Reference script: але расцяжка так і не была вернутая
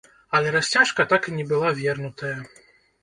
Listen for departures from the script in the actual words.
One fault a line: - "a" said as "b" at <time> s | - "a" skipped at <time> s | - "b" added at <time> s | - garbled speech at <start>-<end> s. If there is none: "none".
none